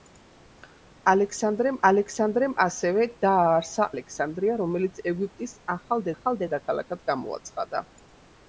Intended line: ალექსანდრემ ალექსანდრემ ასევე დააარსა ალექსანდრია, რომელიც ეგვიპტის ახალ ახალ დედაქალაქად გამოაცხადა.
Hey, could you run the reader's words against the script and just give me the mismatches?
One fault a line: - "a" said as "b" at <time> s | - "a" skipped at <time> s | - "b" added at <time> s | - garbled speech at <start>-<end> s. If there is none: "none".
none